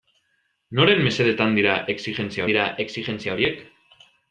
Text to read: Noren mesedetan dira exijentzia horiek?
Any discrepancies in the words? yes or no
yes